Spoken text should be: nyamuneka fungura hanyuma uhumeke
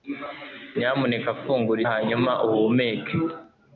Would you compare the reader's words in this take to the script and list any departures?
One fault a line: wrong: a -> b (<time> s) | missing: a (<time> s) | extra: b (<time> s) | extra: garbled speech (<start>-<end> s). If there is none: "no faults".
no faults